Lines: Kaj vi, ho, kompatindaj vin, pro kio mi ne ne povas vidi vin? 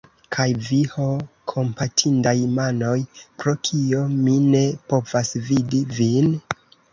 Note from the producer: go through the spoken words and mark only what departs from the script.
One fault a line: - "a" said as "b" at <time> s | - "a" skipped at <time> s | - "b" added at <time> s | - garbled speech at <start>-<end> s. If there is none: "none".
- "vin" said as "manoj" at 2.5 s
- "ne" skipped at 4.6 s